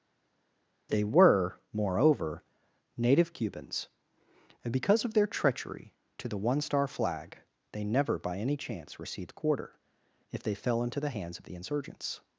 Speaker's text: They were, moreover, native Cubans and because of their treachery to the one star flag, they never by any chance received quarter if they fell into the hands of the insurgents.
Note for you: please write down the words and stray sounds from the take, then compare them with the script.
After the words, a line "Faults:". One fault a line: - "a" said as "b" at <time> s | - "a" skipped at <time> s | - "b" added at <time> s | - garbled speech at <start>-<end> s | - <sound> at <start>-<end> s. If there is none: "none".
They were, moreover, native Cubans and because of their treachery to the one star flag, they never by any chance received quarter if they fell into the hands of the insurgents.
Faults:
none